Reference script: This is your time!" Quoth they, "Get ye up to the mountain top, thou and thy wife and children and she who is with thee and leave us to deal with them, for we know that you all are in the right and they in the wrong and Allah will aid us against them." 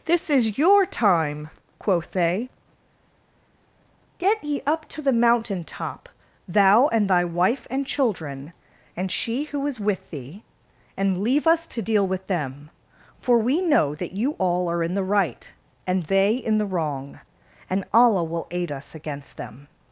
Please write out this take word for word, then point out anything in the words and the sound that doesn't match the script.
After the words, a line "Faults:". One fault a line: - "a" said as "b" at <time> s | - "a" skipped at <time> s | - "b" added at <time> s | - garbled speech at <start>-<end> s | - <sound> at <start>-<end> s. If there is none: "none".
This is your time!" Quoth they, "Get ye up to the mountain top, thou and thy wife and children and she who is with thee and leave us to deal with them, for we know that you all are in the right and they in the wrong and Allah will aid us against them."
Faults:
none